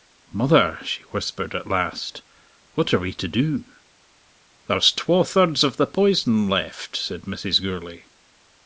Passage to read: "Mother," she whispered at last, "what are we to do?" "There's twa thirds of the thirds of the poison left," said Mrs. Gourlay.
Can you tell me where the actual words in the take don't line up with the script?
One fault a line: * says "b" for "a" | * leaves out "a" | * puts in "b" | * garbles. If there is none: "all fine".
* leaves out "thirds of the"